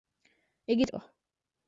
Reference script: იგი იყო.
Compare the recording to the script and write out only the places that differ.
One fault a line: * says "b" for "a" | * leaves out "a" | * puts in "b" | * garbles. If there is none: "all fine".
all fine